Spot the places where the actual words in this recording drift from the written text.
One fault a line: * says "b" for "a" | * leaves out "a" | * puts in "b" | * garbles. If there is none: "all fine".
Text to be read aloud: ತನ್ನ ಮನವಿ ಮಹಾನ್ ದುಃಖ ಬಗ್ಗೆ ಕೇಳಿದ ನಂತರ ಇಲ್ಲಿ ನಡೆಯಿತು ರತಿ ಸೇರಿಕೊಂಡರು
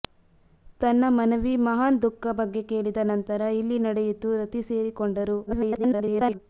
* garbles